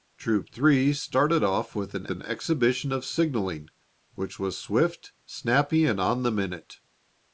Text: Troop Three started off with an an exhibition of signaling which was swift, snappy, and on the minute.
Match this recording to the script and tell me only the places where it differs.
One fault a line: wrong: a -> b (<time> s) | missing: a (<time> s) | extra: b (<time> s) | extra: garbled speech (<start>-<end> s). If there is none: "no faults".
no faults